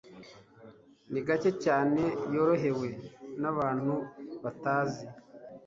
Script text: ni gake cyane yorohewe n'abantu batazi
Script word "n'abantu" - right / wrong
right